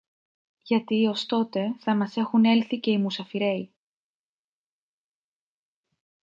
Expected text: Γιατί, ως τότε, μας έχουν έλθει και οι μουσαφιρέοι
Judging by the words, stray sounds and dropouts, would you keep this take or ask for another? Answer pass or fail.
fail